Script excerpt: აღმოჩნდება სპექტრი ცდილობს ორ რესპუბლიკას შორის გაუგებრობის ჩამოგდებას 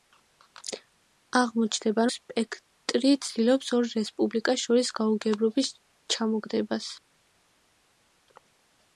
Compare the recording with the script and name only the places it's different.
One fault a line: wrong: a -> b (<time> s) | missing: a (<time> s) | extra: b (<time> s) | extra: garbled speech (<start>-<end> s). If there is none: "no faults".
no faults